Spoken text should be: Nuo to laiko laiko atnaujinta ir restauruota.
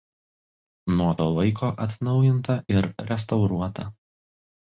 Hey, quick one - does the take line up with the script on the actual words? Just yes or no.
no